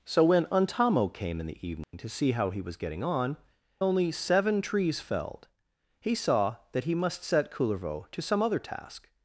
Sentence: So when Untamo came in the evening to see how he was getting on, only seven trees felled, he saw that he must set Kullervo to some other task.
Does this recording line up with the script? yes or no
yes